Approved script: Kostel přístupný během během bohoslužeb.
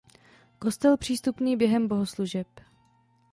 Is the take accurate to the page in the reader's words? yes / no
no